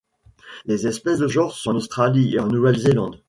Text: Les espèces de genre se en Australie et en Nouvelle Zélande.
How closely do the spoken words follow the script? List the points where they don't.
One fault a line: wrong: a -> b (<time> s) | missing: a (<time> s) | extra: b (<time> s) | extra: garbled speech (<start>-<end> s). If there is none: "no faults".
no faults